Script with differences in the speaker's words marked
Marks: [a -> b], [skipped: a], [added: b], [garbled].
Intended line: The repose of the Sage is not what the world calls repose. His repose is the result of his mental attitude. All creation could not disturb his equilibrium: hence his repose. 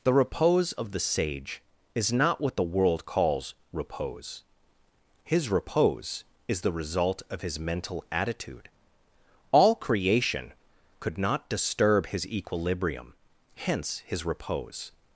The repose of the Sage is not what the world calls repose. His repose is the result of his mental attitude. All creation could not disturb his equilibrium: hence his repose.